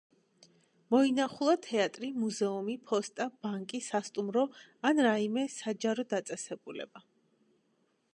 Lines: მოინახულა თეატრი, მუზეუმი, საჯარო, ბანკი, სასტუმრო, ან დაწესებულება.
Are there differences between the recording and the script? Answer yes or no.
yes